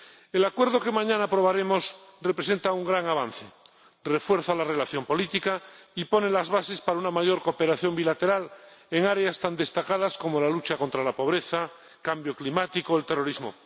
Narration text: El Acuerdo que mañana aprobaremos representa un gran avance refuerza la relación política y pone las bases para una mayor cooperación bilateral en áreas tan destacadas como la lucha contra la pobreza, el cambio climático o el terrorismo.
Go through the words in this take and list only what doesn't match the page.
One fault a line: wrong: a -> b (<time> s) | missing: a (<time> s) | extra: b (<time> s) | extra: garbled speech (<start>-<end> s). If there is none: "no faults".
no faults